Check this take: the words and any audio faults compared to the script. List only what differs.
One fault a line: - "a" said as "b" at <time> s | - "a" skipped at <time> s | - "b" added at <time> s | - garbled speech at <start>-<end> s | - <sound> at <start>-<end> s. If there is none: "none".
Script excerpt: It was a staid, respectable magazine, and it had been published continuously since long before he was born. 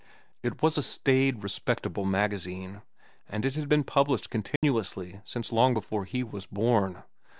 - dropout at 4.6-4.6 s